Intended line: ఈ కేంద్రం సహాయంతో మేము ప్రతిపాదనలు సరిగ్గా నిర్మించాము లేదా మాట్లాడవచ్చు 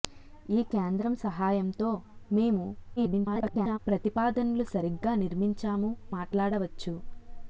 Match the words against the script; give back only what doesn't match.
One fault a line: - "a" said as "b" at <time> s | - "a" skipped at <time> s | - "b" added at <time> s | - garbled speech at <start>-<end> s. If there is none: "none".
- garbled speech at 3.0-3.8 s
- "లేదా" skipped at 5.9 s